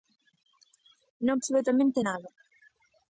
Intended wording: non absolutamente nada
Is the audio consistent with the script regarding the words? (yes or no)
yes